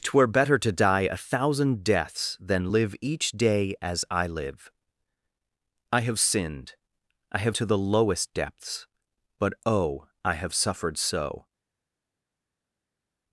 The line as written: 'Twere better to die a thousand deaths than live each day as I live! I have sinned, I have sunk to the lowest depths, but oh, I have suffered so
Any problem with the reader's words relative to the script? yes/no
yes